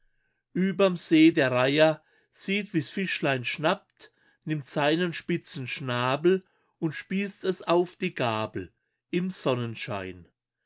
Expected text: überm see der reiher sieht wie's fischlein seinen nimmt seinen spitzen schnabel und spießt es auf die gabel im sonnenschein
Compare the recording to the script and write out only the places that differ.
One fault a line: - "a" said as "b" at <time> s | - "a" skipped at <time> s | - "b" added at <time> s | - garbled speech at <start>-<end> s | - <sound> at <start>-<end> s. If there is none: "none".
- "seinen" said as "schnappt" at 3.4 s